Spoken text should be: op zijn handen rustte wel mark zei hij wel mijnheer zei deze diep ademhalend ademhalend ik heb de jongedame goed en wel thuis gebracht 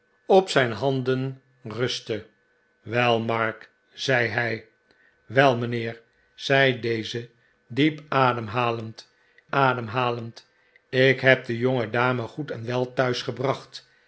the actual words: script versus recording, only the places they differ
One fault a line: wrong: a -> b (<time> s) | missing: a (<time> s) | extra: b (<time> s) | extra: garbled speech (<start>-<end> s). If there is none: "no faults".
no faults